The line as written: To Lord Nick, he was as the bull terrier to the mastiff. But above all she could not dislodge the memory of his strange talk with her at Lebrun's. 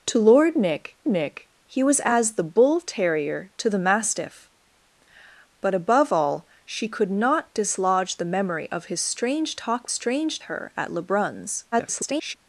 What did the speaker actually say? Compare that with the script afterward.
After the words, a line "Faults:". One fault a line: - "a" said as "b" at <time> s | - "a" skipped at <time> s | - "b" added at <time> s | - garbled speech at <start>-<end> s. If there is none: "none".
To Lord Nick Nick, he was as the bull terrier to the mastiff. But above all she could not dislodge the memory of his strange talk strange her at Lebrun's. [garbled]
Faults:
- "Nick" added at 1.1 s
- "with" said as "strange" at 9.8 s
- garbled speech at 11.7-12.4 s